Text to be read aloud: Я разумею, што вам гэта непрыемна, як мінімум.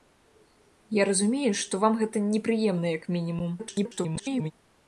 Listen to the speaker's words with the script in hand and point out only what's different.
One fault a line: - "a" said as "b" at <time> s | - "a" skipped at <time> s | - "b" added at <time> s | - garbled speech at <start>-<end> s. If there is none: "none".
- garbled speech at 3.6-4.5 s